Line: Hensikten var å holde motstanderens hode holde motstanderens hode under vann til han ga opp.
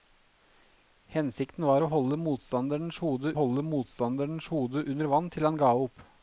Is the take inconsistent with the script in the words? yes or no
no